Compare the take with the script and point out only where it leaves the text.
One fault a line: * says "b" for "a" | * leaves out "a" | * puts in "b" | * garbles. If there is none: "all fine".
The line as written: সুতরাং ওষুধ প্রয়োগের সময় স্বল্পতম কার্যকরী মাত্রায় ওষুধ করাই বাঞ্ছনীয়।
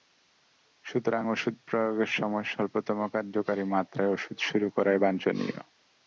* puts in "শুরু"